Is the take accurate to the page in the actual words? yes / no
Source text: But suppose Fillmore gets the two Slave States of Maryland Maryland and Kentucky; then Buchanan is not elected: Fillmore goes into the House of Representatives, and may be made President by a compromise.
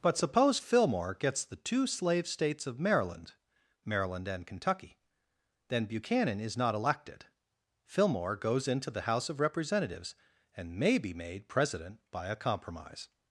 yes